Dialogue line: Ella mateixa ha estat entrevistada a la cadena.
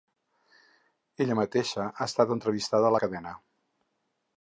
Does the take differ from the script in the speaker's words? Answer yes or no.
no